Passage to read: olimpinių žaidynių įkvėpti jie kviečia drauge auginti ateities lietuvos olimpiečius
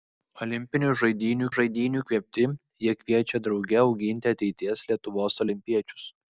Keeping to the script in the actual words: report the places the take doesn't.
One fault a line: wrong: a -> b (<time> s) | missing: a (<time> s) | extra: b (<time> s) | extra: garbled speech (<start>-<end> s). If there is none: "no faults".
extra: žaidynių (1.6 s)